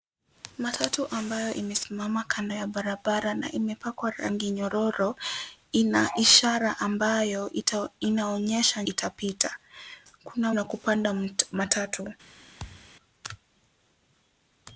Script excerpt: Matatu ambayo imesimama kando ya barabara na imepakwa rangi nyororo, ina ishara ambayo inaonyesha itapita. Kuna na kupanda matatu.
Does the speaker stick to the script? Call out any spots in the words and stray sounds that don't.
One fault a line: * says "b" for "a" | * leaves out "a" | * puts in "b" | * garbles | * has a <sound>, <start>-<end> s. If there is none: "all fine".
* has a thud, 12.6-12.9 s